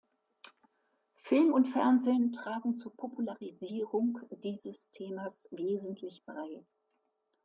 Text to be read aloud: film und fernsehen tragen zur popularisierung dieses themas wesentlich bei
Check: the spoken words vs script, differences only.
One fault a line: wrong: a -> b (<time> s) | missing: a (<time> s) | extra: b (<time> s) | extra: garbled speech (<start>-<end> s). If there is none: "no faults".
no faults